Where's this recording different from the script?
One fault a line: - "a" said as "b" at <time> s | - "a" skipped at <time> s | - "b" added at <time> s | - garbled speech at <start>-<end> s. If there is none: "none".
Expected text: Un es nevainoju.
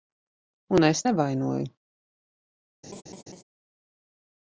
none